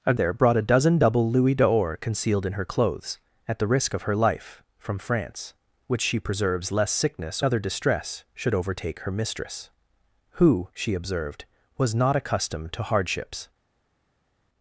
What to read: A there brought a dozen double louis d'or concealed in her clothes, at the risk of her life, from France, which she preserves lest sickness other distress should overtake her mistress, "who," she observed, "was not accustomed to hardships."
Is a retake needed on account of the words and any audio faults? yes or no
no